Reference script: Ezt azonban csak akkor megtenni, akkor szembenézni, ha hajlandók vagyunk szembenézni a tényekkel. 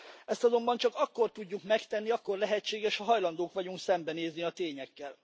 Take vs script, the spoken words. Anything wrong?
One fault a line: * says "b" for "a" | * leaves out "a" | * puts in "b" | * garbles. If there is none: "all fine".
* puts in "tudjuk"
* says "lehetséges" for "szembenézni"